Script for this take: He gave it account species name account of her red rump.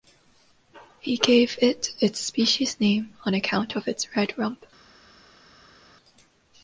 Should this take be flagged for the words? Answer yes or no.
yes